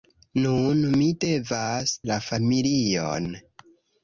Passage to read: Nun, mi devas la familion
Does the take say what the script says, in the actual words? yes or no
yes